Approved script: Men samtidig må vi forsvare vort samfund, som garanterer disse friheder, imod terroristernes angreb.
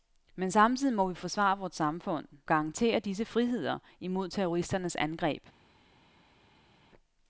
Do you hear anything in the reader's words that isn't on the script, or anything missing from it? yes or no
yes